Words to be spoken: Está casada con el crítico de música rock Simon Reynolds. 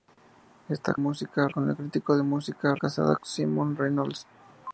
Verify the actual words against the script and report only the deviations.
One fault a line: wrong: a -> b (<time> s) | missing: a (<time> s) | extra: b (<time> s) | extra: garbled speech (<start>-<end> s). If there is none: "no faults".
wrong: casada -> música (0.9 s)
wrong: rock -> casada (2.7 s)